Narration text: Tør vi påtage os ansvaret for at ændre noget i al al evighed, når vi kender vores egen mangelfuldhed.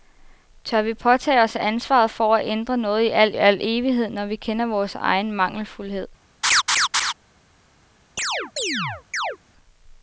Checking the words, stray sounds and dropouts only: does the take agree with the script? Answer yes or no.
no